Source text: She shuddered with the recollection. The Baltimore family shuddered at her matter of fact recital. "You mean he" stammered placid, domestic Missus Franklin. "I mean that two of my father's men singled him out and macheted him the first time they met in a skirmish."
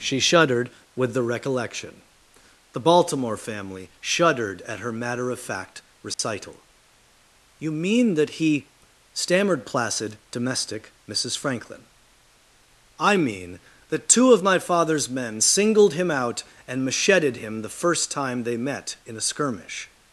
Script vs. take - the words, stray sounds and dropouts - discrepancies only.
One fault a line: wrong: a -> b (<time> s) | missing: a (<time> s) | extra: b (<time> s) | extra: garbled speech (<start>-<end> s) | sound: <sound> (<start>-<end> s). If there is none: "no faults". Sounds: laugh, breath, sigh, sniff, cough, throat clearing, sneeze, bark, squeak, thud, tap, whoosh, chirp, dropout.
sound: dropout (6.1-6.2 s)
extra: that (8.2 s)